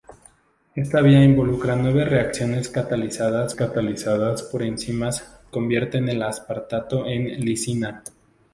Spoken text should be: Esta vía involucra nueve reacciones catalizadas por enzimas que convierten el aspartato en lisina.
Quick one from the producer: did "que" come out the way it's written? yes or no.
no